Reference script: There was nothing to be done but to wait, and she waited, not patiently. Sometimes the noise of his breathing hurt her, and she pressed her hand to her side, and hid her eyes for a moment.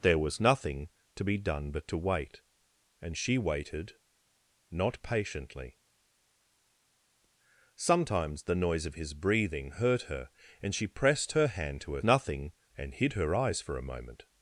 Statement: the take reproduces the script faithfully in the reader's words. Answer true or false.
false